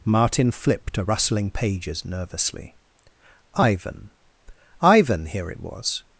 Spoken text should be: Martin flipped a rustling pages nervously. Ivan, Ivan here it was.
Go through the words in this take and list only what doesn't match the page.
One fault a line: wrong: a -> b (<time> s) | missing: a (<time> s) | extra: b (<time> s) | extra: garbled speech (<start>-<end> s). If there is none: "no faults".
no faults